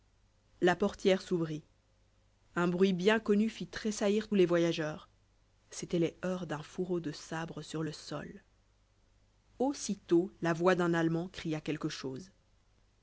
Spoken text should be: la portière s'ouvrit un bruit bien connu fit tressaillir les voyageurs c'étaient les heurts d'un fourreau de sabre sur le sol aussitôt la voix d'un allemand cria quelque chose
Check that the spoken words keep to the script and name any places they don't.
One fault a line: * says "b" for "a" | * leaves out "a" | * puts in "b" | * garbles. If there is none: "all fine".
all fine